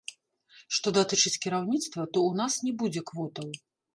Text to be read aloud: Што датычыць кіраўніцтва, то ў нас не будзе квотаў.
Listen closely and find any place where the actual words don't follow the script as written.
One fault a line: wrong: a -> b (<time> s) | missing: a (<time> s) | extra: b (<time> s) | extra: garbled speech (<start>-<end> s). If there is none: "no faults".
no faults